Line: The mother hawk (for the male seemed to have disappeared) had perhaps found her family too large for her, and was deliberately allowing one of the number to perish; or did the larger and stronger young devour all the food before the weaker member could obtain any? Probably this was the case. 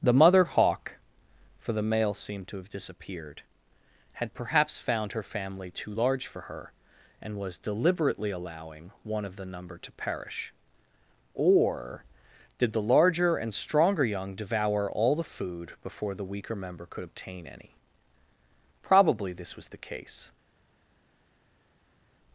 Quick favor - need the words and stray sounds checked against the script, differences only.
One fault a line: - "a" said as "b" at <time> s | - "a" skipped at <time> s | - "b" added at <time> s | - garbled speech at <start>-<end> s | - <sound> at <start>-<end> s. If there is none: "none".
none